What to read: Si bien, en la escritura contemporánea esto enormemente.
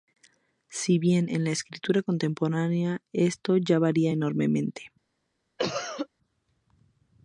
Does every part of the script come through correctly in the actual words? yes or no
no